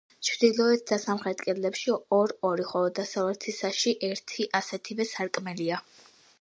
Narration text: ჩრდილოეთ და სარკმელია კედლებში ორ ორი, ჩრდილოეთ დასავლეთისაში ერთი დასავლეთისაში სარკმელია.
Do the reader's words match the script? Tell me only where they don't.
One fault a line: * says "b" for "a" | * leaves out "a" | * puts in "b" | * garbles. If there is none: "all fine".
* says "სამხრეთ" for "სარკმელია"
* says "ხოლო" for "ჩრდილოეთ"
* says "ასეთივე" for "დასავლეთისაში"